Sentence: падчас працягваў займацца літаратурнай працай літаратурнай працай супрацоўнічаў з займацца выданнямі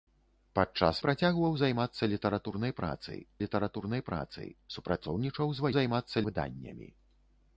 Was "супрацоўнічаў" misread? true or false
false